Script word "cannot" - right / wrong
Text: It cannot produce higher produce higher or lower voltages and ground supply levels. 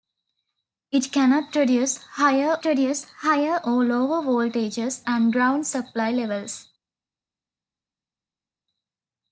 right